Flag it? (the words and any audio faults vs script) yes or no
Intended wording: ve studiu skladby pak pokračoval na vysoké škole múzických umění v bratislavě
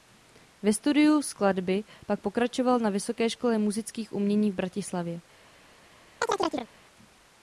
yes